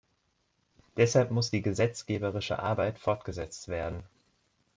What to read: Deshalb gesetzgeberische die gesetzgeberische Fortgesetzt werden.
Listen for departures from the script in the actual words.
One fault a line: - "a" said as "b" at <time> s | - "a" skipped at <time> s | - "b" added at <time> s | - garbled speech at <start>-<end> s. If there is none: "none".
- "gesetzgeberische" said as "muss" at 1.3 s
- "Arbeit" added at 2.6 s